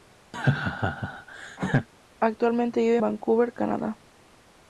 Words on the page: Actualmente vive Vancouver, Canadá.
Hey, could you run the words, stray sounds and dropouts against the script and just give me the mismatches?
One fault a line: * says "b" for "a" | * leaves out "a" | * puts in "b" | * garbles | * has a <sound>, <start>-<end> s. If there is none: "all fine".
* has a laugh, 0.3-1.9 s